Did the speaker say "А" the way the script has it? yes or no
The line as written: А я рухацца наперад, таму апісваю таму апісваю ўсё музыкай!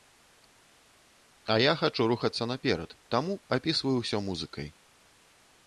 yes